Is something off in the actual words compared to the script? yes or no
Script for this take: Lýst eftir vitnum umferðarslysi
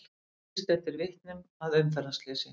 yes